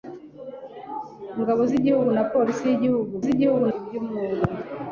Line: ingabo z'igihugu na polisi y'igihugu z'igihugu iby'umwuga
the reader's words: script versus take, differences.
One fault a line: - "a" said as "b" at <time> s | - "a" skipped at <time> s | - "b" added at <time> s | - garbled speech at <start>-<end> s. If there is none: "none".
none